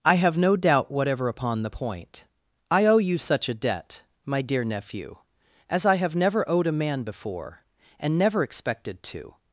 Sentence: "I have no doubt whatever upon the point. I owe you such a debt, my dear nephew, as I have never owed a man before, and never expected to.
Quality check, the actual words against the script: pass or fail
pass